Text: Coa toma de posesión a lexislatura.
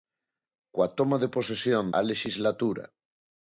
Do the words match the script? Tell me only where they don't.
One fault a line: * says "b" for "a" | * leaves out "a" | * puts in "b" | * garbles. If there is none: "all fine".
all fine